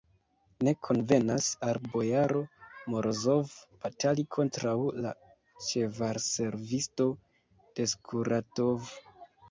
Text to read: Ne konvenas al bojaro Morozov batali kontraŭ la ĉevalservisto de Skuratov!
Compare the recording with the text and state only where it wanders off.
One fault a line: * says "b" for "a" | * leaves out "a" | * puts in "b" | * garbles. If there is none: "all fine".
all fine